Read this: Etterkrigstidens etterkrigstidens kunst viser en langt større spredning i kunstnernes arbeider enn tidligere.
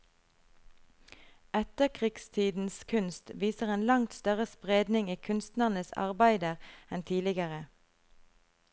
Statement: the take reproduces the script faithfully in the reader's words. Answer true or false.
false